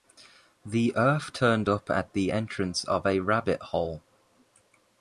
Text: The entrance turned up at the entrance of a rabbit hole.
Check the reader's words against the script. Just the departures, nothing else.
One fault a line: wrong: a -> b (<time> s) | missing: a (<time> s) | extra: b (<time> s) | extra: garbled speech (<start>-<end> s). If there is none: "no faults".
wrong: entrance -> earth (0.9 s)